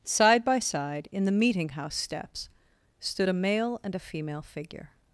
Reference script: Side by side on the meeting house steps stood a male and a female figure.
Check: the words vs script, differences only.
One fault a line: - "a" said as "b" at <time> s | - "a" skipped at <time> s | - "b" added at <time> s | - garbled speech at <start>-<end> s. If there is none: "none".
- "on" said as "in" at 1.1 s